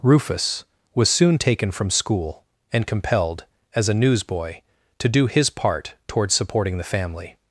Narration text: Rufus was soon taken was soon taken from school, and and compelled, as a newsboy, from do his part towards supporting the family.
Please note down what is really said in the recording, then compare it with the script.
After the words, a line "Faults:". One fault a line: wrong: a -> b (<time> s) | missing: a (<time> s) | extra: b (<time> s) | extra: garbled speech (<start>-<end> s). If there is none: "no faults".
Rufus was soon taken from school, and compelled, as a newsboy, to do his part towards supporting the family.
Faults:
missing: was soon taken (1.7 s)
missing: and (2.9 s)
wrong: from -> to (5.0 s)